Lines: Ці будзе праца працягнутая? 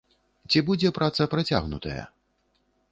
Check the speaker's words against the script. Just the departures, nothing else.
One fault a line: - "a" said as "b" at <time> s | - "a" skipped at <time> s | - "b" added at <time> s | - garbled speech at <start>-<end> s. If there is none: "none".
none